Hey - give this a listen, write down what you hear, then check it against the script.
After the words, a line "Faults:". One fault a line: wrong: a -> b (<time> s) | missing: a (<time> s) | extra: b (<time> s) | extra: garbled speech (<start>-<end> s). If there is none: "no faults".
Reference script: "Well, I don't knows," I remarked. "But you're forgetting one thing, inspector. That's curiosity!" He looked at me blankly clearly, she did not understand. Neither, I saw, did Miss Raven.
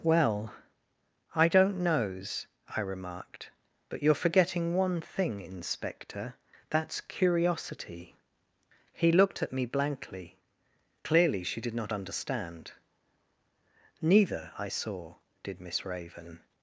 "Well, I don't knows," I remarked. "But you're forgetting one thing, inspector. That's curiosity!" He looked at me blankly clearly, she did not understand. Neither, I saw, did Miss Raven.
Faults:
no faults